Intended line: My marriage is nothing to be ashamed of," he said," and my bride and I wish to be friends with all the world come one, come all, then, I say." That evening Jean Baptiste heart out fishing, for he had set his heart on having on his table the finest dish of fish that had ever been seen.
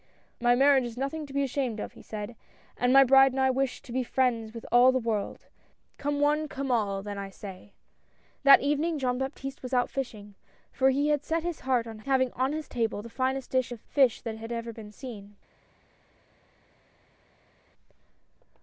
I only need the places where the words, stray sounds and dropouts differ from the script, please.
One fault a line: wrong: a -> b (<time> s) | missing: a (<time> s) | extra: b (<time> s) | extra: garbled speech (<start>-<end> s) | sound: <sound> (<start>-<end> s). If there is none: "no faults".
wrong: heart -> was (9.6 s)